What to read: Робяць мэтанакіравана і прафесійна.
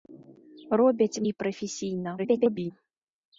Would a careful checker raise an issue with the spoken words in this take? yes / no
yes